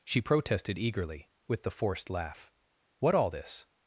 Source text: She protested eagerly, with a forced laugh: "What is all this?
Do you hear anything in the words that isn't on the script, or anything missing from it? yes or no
yes